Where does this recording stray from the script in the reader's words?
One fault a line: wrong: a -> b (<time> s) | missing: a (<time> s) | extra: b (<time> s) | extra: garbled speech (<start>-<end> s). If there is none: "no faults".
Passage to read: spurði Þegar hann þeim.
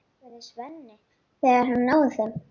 extra: Svenni (0.5 s)
extra: náði (1.9 s)